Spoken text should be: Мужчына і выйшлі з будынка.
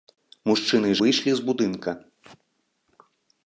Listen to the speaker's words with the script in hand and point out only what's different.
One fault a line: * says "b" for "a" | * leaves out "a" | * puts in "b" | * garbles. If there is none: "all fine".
all fine